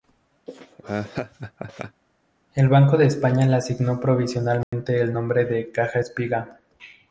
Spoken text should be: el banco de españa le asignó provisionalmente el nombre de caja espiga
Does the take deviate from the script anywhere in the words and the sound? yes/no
yes